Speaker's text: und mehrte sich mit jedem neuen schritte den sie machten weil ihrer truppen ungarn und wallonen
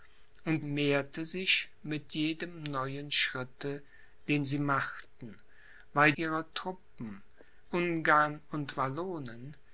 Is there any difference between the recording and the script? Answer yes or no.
no